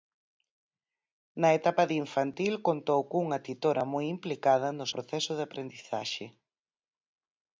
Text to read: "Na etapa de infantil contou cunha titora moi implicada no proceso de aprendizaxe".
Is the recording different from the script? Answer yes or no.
no